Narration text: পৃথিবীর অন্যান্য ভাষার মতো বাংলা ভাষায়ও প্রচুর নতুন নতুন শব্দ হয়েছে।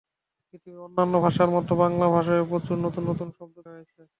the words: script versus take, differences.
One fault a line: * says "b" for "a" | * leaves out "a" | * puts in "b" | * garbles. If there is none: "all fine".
all fine